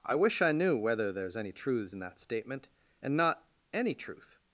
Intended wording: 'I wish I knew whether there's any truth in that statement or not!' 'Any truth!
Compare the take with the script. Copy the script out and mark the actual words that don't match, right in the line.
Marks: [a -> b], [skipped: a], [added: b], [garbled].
'I wish I knew whether there's any [truth -> truths] in that statement [or -> and] not!' 'Any truth!